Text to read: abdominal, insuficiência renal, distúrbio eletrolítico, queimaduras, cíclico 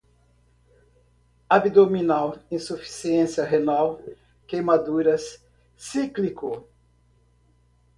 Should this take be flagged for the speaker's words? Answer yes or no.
yes